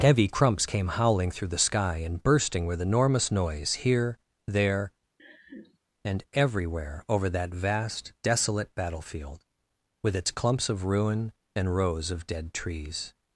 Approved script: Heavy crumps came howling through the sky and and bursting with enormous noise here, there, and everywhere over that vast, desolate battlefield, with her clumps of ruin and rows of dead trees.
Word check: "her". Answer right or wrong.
wrong